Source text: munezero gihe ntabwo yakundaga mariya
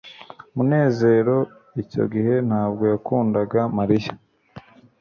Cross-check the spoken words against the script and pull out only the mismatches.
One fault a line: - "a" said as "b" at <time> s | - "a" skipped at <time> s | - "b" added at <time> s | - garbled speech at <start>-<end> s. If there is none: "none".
- "icyo" added at 1.8 s